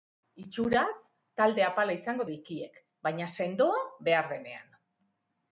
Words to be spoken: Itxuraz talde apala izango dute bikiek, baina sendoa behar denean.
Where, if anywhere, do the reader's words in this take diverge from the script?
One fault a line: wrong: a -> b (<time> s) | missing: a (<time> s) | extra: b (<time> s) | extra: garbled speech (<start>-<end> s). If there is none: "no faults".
missing: dute (2.3 s)